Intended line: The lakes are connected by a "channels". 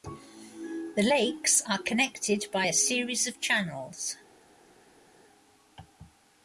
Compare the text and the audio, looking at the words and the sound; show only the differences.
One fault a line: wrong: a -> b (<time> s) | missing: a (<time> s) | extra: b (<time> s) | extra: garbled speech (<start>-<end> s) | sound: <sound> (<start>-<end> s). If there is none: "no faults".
extra: series of (2.7 s)